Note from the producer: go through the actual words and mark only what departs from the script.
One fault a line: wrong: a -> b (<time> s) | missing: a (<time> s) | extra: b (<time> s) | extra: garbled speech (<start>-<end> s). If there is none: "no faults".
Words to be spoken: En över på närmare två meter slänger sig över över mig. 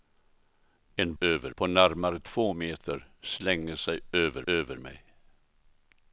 no faults